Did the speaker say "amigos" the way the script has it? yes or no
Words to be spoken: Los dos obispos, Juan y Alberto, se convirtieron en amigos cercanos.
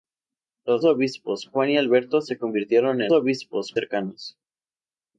no